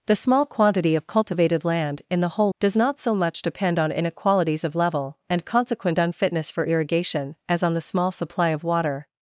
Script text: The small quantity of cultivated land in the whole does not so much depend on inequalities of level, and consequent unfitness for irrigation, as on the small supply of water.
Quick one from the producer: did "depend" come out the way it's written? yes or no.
yes